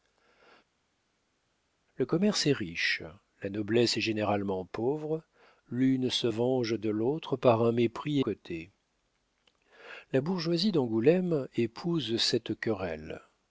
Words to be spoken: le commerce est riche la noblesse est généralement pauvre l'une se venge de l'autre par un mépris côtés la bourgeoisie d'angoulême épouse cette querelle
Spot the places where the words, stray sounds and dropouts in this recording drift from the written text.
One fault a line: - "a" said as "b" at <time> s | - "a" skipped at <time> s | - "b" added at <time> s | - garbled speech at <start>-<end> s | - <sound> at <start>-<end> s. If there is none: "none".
none